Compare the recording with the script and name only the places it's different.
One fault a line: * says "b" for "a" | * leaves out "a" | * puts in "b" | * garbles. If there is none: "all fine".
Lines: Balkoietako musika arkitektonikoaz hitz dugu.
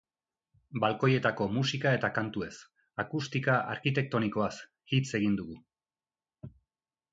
* puts in "eta kantuez akustika"
* puts in "egin"